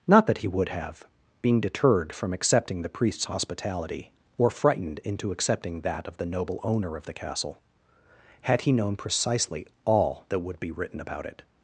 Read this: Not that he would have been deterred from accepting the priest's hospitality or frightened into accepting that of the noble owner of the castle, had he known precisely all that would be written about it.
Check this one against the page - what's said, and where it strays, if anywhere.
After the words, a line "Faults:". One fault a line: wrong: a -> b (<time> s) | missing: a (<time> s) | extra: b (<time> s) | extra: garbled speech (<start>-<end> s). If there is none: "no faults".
Not that he would have being deterred from accepting the priest's hospitality or frightened into accepting that of the noble owner of the castle, had he known precisely all that would be written about it.
Faults:
wrong: been -> being (1.4 s)